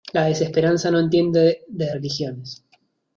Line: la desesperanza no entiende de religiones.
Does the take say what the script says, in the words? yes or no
yes